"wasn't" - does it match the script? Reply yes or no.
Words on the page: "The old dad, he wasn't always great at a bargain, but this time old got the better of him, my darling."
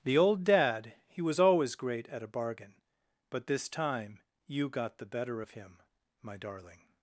no